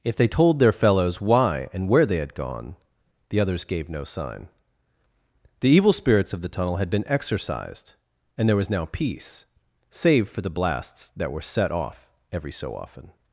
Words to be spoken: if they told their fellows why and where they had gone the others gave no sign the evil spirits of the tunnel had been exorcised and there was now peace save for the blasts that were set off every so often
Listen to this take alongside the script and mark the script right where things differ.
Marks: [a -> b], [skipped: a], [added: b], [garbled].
if they told their fellows why and where they had gone the others gave no sign the evil spirits of the tunnel had been exorcised and there was now peace save for the blasts that were set off every so often